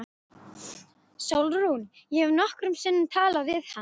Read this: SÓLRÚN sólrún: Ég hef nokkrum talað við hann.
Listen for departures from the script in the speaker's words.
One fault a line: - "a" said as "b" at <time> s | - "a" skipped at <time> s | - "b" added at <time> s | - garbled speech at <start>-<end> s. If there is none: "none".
- "sólrún" skipped at 1.8 s
- "sinnum" added at 2.9 s